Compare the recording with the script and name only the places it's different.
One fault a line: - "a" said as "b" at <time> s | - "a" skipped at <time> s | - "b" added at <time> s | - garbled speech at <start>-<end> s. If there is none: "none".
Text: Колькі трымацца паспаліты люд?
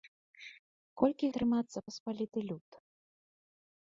none